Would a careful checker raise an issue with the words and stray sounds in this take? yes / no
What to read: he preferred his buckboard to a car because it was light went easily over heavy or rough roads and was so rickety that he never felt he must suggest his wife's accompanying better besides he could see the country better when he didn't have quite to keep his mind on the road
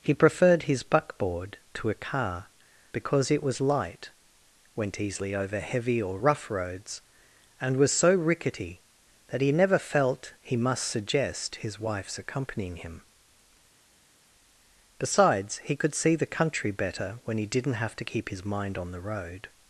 yes